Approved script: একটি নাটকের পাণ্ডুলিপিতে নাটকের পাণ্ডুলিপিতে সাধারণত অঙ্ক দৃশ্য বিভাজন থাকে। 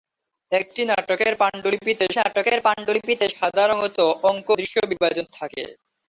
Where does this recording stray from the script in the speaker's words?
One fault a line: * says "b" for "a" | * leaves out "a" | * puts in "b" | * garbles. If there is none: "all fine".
all fine